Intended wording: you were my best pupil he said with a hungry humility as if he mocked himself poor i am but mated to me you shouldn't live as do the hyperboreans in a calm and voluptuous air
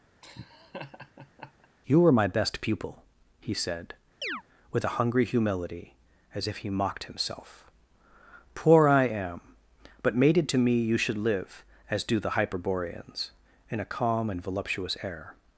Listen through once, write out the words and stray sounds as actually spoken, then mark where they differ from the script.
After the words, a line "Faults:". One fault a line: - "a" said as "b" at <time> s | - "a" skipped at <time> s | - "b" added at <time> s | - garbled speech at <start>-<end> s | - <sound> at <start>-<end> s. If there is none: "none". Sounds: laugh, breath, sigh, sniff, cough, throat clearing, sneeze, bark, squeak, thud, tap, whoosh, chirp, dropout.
you were my best pupil he said with a hungry humility as if he mocked himself poor i am but mated to me you should live as do the hyperboreans in a calm and voluptuous air
Faults:
- laugh at 0.2-1.7 s
- chirp at 4.2-4.4 s
- "shouldn't" said as "should" at 11.0 s